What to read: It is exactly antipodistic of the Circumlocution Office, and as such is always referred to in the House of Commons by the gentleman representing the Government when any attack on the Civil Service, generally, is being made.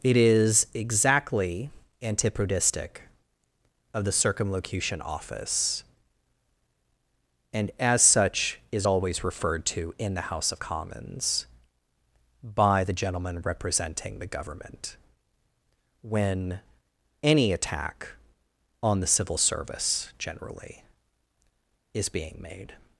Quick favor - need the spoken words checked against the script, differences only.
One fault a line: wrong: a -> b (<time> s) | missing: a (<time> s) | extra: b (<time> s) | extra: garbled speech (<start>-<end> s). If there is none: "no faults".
no faults